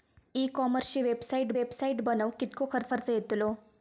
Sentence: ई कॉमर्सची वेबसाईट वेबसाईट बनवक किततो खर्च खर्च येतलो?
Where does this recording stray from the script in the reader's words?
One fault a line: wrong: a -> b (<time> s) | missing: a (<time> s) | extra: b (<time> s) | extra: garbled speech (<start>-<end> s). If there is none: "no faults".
no faults